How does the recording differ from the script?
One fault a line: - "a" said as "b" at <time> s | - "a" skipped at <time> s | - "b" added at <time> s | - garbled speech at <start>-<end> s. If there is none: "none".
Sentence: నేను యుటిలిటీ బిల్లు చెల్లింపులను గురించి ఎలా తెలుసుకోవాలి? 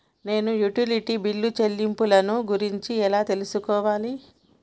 none